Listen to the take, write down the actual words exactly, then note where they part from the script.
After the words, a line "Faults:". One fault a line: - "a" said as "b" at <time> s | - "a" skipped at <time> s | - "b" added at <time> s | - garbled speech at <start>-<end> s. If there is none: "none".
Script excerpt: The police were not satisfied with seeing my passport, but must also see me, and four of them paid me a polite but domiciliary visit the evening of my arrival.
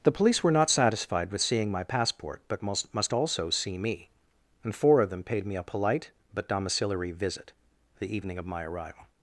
The police were not satisfied with seeing my passport, but must must also see me, and four of them paid me a polite but domiciliary visit the evening of my arrival.
Faults:
- "must" added at 2.9 s